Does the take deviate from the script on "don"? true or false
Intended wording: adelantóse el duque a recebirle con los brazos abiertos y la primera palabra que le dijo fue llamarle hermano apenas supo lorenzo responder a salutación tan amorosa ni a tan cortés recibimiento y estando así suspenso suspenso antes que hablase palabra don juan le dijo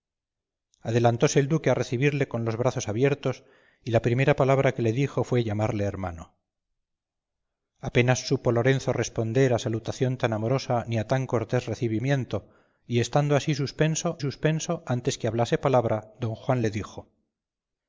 false